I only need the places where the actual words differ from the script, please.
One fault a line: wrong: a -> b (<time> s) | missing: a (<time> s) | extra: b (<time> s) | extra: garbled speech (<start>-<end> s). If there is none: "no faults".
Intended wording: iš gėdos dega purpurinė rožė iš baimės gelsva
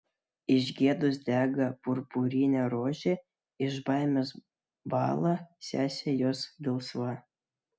extra: bąla sesė jos (5.0 s)